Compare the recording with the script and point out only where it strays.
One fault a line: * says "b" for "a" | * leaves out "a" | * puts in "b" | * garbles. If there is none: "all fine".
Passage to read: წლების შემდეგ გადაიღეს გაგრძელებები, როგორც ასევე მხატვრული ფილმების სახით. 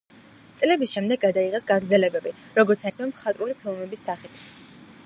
all fine